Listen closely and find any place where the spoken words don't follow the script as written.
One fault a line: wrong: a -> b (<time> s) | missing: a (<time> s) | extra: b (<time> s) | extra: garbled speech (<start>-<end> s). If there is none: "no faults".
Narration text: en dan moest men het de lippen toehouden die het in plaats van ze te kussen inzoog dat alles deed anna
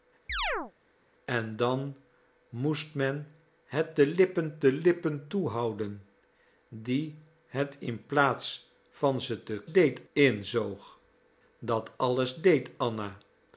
extra: de lippen (4.6 s)
wrong: kussen -> deed (9.7 s)